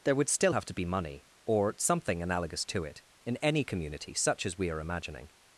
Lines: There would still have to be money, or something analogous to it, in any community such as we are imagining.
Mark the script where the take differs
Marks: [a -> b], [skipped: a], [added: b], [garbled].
There would still have to be money, or something analogous to it, in any community such as we are imagining.